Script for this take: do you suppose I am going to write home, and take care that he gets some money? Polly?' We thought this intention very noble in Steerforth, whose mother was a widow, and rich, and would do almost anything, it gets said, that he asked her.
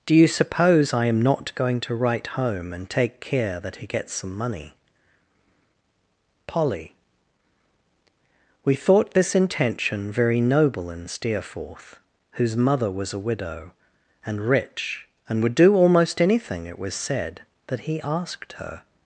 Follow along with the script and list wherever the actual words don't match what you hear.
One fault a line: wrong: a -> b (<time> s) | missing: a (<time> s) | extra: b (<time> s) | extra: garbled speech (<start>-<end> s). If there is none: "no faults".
extra: not (1.2 s)
wrong: gets -> was (16.8 s)